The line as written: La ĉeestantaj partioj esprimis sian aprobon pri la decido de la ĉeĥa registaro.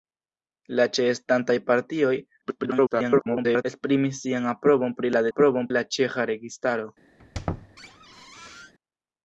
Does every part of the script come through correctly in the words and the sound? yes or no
no